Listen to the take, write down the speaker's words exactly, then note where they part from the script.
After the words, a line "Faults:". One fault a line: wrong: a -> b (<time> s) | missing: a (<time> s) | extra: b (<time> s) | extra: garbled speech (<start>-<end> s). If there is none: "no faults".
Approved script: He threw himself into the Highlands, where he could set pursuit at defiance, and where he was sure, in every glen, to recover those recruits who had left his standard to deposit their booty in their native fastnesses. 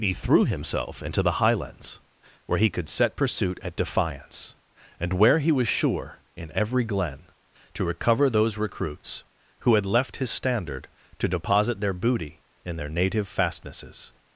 He threw himself into the Highlands, where he could set pursuit at defiance, and where he was sure, in every glen, to recover those recruits who had left his standard to deposit their booty in their native fastnesses.
Faults:
no faults